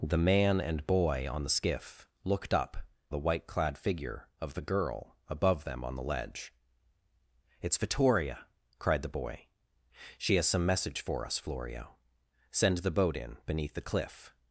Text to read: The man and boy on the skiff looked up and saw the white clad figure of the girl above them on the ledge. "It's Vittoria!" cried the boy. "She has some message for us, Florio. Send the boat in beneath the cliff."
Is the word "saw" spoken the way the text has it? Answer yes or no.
no